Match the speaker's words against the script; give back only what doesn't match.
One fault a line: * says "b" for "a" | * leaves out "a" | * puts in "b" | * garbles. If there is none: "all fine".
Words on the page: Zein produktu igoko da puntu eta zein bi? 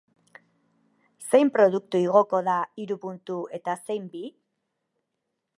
* puts in "hiru"